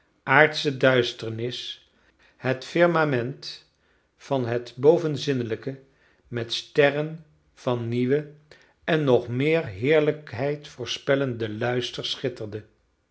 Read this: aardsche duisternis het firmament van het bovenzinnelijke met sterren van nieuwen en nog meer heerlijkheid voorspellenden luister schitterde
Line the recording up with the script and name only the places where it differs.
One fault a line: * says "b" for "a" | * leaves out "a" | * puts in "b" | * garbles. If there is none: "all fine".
all fine